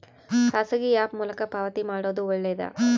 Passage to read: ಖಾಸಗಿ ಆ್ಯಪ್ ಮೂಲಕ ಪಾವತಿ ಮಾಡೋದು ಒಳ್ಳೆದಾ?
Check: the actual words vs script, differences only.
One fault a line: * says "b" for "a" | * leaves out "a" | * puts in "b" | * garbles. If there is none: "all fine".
all fine